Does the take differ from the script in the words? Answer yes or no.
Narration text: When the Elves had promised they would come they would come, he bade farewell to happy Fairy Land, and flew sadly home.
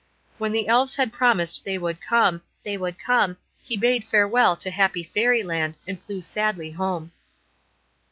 no